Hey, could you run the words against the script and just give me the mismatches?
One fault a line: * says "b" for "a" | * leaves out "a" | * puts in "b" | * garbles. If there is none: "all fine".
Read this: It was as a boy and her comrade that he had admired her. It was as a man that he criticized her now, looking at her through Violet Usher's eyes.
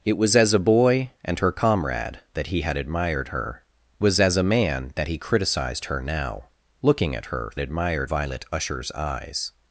* leaves out "It"
* says "admired" for "through"